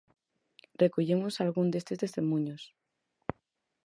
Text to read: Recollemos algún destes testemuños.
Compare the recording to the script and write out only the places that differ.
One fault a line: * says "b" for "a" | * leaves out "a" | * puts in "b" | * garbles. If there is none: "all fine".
all fine